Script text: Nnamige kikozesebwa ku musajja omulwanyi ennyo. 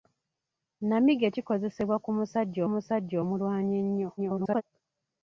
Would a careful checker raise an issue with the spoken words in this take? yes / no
yes